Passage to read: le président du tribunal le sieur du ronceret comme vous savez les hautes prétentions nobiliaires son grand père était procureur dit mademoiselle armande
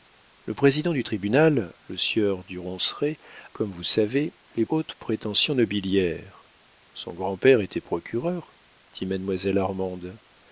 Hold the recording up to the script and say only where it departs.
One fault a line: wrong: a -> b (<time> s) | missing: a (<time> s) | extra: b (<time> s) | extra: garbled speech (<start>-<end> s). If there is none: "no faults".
no faults